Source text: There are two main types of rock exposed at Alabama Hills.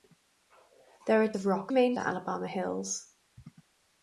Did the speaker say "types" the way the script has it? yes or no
no